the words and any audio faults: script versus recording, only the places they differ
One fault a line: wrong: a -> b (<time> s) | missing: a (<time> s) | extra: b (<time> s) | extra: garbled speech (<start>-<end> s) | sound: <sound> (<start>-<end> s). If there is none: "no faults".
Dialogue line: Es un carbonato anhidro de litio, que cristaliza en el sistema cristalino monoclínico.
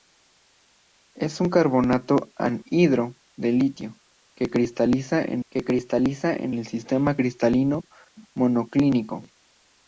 extra: que cristaliza en (5.5 s)